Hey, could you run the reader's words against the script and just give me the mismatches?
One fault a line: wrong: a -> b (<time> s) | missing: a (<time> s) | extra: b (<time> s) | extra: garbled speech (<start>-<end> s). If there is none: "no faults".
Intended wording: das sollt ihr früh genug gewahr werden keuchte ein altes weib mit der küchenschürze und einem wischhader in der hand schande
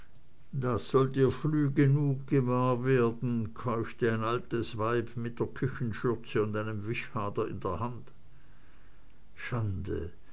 no faults